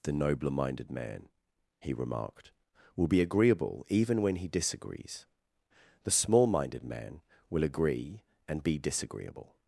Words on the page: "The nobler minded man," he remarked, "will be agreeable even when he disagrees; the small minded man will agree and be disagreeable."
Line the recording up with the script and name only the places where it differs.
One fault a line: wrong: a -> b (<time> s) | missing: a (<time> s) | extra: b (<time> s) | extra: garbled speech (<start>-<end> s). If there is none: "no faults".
no faults